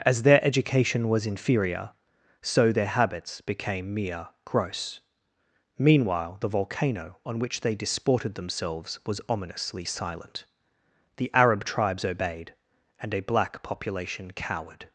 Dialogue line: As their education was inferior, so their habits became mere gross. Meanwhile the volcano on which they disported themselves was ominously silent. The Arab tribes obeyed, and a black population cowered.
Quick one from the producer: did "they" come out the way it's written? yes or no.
yes